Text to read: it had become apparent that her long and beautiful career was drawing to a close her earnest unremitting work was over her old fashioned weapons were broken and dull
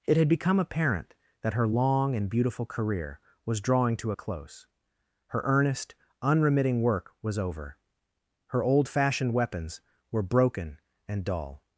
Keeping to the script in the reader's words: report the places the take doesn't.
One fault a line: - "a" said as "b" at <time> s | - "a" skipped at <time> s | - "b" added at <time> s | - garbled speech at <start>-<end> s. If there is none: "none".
none